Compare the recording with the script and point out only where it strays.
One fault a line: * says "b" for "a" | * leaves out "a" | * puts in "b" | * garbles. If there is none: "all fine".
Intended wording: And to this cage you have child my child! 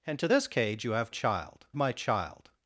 all fine